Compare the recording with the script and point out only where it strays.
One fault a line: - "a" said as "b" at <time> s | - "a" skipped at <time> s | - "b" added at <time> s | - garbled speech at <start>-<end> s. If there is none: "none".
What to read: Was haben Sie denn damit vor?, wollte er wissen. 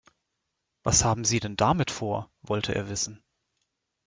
none